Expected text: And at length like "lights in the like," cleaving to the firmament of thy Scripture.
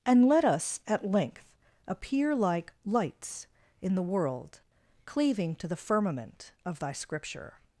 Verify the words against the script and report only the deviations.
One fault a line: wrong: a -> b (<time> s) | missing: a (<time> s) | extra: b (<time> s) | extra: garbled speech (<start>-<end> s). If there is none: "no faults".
extra: let us (0.3 s)
extra: appear (1.9 s)
wrong: like -> world (4.0 s)